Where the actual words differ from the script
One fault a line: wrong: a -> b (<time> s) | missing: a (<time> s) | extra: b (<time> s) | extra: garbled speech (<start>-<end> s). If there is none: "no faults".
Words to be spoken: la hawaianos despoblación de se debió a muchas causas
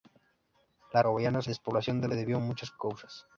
no faults